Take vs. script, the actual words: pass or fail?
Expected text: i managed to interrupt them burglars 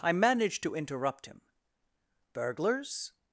fail